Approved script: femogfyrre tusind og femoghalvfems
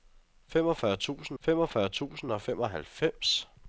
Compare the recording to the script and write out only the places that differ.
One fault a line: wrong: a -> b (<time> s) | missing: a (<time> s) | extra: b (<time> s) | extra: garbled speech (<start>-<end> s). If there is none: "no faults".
extra: femogfyrre tusind (1.4 s)